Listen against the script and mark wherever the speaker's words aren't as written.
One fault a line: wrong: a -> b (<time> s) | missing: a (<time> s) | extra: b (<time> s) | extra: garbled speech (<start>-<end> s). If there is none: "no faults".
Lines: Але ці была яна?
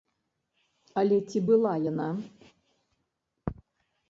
no faults